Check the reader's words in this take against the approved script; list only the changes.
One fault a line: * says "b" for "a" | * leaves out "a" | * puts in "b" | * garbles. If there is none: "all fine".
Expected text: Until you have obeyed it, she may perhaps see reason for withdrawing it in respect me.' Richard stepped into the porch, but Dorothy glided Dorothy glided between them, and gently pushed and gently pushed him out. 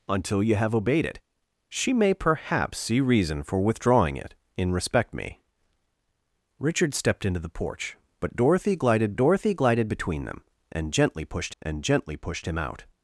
all fine